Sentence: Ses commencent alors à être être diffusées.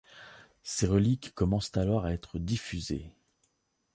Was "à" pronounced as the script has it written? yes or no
yes